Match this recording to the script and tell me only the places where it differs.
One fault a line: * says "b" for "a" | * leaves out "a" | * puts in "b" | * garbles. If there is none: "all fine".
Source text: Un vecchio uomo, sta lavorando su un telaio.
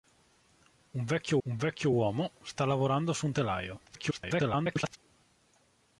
* puts in "un vecchio"
* garbles